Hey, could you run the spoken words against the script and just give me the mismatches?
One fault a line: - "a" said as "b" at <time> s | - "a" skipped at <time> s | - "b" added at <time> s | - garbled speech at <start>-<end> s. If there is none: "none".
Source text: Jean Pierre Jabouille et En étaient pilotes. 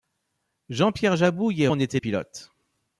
none